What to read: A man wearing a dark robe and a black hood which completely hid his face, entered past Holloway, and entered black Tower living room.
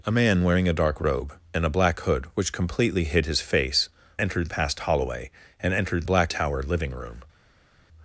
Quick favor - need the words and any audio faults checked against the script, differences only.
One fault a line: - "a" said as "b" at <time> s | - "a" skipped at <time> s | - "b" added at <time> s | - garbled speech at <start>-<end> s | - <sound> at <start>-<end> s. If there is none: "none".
none